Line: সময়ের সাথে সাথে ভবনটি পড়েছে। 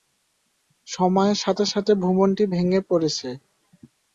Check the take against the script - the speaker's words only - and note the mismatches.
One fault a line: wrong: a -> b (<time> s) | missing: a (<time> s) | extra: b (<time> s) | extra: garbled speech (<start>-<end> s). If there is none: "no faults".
extra: ভেঙে (2.5 s)